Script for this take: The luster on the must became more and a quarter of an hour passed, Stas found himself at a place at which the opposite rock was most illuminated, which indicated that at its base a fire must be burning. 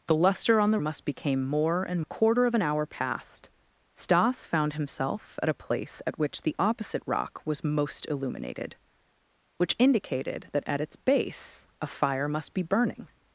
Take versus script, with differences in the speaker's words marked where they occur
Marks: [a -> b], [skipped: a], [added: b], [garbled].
The luster on the must became more and a quarter of an hour passed, Stas found himself at a place at which the opposite rock was most illuminated, which indicated that at its base a fire must be burning.